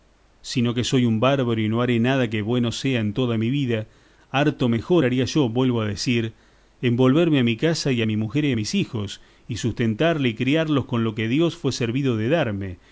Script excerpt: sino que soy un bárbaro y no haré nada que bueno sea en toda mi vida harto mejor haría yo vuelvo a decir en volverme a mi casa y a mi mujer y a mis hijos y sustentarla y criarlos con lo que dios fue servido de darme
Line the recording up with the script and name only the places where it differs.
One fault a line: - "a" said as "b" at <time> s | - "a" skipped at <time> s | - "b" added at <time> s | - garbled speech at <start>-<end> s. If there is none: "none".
none